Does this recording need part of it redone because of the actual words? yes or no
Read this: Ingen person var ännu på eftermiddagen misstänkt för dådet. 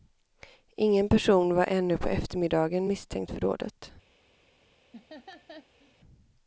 no